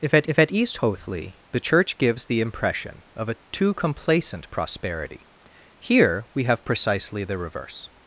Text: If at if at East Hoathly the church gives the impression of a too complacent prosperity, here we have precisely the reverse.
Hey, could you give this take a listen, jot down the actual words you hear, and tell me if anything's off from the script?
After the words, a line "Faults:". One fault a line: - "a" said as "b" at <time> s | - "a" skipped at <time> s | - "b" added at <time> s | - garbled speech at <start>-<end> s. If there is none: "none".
If at if at East Hoathly the church gives the impression of a too complacent prosperity, here we have precisely the reverse.
Faults:
none